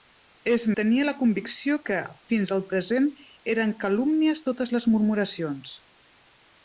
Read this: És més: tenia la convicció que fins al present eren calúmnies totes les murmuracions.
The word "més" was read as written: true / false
false